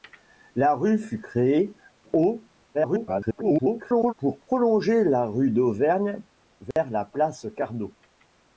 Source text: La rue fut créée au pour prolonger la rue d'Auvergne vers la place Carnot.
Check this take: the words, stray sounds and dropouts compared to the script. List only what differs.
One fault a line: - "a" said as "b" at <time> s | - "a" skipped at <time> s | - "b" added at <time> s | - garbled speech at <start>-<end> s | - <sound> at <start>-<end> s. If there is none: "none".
- garbled speech at 2.7-4.1 s
- dropout at 6.7-6.8 s